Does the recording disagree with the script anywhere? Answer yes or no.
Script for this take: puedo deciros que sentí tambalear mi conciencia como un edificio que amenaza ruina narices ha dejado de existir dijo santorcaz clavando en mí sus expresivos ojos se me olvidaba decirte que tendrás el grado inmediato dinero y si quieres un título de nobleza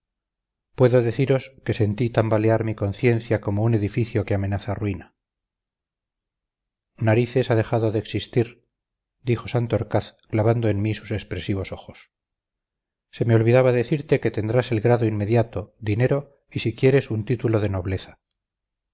no